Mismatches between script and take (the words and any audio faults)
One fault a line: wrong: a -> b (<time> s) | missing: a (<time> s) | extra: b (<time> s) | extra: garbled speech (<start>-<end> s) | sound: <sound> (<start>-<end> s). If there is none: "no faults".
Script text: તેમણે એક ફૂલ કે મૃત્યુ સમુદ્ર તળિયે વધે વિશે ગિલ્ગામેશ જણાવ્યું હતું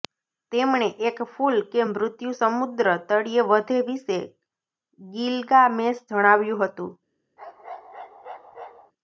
sound: bark (7.4-8.9 s)